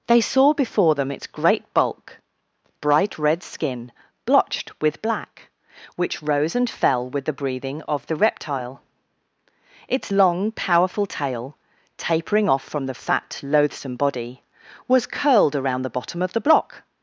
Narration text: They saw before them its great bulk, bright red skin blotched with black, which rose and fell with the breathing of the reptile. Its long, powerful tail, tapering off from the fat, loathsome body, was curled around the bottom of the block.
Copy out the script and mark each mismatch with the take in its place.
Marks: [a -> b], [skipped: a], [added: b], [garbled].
They saw before them its great bulk, bright red skin blotched with black, which rose and fell with the breathing of the reptile. Its long, powerful tail, tapering off from the fat, loathsome body, was curled around the bottom of the block.